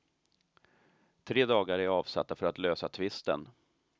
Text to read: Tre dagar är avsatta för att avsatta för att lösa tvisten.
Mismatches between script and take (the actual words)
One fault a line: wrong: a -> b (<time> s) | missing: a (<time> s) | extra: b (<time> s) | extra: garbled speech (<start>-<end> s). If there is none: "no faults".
missing: avsatta för att (2.6 s)